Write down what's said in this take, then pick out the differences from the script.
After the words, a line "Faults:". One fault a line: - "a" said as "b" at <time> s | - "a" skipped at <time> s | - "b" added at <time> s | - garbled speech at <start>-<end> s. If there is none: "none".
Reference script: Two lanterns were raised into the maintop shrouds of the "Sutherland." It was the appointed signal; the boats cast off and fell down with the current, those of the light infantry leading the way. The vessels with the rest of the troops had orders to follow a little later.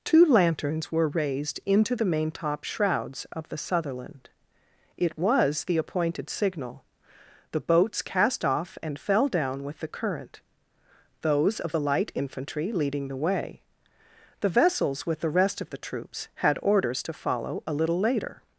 Two lanterns were raised into the maintop shrouds of the "Sutherland." It was the appointed signal; the boats cast off and fell down with the current, those of the light infantry leading the way. The vessels with the rest of the troops had orders to follow a little later.
Faults:
none